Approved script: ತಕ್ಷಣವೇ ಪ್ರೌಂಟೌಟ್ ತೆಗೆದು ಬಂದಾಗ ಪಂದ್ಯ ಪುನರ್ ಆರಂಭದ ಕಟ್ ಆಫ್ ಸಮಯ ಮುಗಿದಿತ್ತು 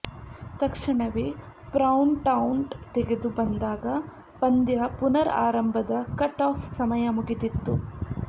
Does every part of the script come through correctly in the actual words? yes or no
yes